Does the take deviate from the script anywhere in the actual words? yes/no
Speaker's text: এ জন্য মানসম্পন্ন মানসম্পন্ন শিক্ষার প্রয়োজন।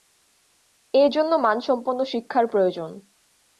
yes